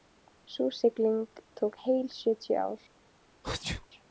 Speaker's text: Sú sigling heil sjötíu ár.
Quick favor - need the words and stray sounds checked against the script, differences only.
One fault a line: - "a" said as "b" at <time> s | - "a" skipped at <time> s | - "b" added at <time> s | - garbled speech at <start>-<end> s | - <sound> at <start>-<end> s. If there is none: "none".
- "tók" added at 1.5 s
- sneeze at 3.4-3.9 s